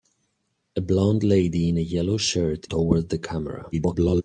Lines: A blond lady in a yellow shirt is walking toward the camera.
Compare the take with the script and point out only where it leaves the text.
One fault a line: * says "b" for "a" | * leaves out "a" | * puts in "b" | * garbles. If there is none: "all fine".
* leaves out "is walking"
* garbles